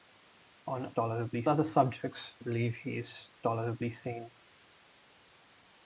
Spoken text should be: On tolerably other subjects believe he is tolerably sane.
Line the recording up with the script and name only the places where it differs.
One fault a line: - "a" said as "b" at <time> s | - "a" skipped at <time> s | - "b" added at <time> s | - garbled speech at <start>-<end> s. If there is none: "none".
none